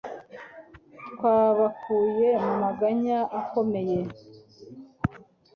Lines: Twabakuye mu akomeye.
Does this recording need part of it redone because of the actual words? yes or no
yes